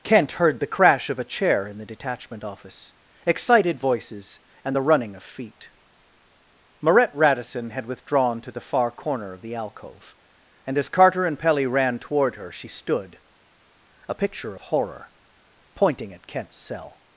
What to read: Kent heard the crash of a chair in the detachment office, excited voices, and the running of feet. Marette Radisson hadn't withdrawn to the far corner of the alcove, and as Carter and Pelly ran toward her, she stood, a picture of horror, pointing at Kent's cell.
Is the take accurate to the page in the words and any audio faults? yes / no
no